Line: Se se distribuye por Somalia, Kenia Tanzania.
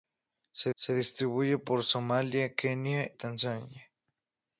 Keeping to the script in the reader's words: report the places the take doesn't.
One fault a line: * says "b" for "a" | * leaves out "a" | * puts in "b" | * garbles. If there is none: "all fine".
all fine